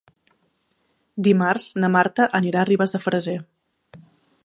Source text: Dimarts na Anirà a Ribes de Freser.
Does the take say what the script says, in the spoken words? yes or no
no